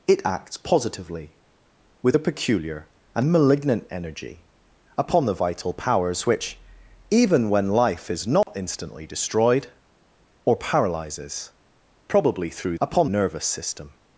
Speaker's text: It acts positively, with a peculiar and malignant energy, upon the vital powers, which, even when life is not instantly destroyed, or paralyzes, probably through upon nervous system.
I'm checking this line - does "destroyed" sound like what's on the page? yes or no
yes